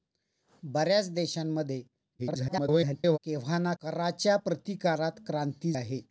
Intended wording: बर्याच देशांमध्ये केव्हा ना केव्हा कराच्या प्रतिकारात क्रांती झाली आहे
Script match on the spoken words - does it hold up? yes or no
no